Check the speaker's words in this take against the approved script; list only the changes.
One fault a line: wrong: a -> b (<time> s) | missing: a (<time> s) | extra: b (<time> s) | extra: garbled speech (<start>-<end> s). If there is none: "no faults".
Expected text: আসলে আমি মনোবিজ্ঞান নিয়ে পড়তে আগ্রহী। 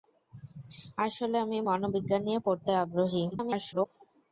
extra: garbled speech (3.3-3.9 s)